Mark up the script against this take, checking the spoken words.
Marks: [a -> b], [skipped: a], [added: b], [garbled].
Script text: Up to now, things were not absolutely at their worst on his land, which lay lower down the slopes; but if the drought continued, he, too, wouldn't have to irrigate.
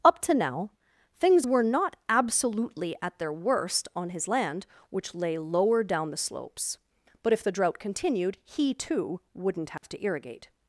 Up to now, things were not absolutely at their worst on his land, which lay lower down the slopes; but if the drought continued, he, too, wouldn't have to irrigate.